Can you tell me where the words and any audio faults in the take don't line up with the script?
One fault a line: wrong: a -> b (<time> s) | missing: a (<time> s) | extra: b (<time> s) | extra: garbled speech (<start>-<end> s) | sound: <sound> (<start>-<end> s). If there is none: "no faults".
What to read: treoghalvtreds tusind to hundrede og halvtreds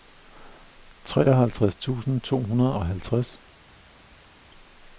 no faults